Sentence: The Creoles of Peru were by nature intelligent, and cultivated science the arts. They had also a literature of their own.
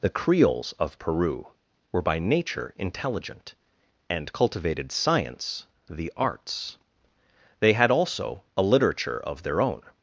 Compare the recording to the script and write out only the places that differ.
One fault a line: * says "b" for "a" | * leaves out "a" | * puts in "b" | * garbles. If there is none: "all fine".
all fine